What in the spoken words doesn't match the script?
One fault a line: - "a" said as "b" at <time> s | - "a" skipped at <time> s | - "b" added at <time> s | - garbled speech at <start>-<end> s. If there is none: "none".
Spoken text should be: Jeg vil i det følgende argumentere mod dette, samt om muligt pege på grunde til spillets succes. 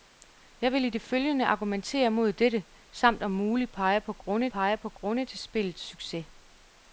- "pege på grunde" added at 4.5 s